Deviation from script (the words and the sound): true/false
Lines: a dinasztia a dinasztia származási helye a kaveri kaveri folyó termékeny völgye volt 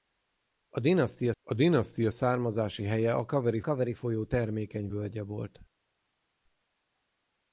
false